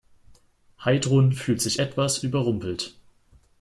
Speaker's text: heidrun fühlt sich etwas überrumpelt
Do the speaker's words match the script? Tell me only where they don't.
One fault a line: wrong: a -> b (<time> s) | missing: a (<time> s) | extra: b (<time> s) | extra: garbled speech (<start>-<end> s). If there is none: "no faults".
no faults